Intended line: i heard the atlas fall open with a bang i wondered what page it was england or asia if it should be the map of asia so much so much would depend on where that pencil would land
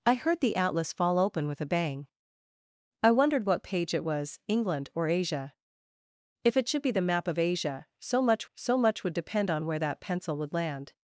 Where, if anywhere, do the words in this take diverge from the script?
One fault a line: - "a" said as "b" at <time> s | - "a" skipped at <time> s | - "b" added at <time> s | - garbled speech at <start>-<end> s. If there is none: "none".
none